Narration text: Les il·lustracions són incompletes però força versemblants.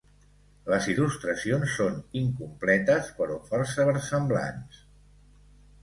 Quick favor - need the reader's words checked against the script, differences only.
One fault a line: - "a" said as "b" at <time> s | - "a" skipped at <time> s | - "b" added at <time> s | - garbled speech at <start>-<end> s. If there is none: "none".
none